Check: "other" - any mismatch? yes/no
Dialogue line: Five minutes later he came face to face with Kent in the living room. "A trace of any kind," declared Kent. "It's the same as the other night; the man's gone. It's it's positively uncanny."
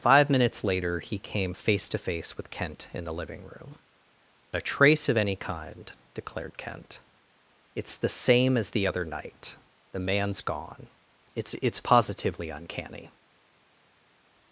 no